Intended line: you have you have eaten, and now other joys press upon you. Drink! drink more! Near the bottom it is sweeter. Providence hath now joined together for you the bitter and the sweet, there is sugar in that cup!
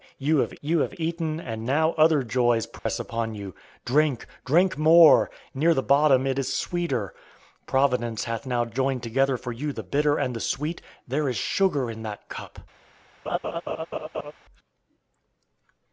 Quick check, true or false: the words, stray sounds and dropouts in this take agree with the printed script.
false